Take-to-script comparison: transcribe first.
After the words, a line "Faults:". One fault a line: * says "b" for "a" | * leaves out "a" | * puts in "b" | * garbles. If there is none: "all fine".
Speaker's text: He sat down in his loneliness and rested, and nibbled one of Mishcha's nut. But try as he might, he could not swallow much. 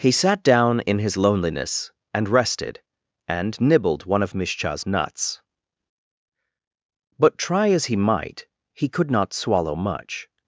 He sat down in his loneliness and rested, and nibbled one of Mishcha's nuts. But try as he might, he could not swallow much.
Faults:
* says "nuts" for "nut"